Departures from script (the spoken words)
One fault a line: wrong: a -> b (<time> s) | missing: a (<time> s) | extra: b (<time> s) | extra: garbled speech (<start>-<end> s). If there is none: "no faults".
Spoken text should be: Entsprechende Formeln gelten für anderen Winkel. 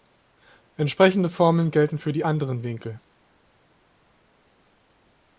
extra: die (2.1 s)